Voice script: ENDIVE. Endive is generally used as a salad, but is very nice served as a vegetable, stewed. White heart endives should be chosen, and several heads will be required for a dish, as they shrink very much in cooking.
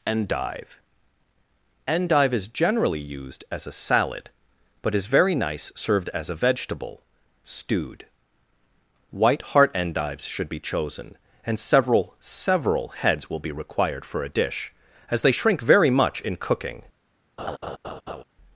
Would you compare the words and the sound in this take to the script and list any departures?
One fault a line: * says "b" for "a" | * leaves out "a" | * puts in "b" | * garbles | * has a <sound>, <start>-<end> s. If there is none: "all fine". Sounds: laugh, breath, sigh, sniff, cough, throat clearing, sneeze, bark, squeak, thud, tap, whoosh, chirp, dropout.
* puts in "several"
* has a laugh, 17.4-18.2 s